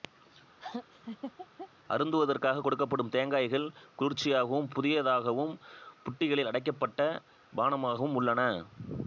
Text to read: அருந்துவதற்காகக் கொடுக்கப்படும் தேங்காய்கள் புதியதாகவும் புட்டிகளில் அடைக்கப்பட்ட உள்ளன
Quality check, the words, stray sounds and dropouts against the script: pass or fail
fail